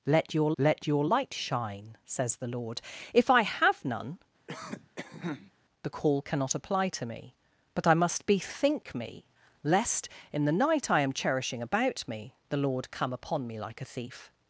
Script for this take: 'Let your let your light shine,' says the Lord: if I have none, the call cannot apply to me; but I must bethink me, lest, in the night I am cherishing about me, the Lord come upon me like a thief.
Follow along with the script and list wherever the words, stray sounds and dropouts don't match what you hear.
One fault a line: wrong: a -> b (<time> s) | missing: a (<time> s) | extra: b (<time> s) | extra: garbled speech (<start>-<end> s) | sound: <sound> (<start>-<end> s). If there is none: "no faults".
sound: cough (4.5-5.5 s)